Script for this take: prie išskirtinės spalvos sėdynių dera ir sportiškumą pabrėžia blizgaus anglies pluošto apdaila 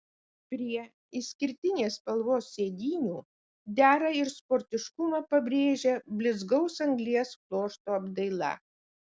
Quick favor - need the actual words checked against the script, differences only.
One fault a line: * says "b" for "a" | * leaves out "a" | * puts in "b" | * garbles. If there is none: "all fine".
all fine